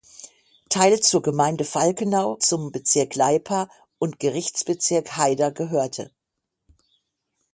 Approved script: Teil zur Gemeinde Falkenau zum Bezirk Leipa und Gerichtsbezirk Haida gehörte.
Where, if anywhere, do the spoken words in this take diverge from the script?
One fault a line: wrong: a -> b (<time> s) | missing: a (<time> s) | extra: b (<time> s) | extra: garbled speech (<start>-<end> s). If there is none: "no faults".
no faults